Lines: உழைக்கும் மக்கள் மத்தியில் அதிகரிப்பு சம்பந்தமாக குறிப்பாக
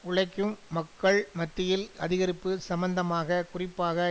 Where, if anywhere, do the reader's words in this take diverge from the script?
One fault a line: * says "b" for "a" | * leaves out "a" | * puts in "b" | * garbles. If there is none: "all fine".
all fine